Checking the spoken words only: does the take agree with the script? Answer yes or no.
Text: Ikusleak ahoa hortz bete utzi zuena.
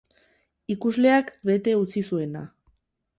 no